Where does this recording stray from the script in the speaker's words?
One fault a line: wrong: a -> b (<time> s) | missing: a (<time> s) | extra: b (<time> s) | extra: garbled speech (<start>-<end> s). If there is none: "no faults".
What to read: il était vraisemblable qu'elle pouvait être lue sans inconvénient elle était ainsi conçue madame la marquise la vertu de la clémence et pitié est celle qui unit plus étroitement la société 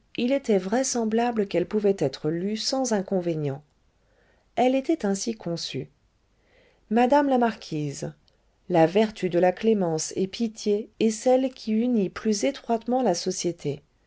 no faults